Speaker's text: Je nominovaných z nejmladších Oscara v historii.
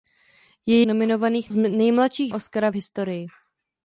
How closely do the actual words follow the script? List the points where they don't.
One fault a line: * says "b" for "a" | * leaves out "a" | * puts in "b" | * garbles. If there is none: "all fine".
all fine